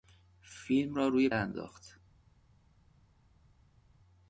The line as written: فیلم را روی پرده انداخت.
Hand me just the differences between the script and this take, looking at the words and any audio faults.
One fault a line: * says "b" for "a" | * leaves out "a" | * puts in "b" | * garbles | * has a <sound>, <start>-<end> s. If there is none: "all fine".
* leaves out "پرده"